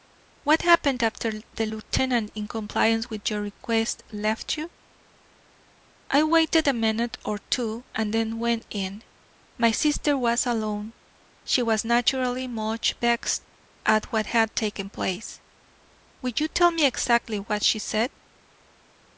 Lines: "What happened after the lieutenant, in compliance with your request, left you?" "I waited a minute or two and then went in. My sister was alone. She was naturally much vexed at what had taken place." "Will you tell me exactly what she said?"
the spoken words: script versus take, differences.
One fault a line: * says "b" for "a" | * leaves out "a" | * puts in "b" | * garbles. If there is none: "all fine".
all fine